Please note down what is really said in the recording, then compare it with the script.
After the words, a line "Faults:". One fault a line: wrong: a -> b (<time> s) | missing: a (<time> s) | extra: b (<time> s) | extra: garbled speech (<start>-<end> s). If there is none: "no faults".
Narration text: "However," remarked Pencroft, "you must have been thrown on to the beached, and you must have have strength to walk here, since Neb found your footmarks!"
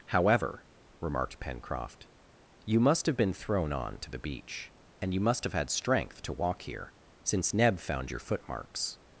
"However," remarked Pencroft, "you must have been thrown on to the beach, and you must have had strength to walk here, since Neb found your footmarks!"
Faults:
wrong: beached -> beach (4.2 s)
wrong: have -> had (5.5 s)